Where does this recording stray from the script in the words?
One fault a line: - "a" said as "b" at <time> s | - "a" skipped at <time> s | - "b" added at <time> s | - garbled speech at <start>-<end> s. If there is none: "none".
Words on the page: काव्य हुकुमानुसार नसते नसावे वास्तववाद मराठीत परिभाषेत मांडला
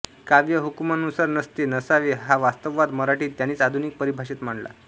- "हा" added at 2.2 s
- "त्यांनीच आधुनिक" added at 3.4 s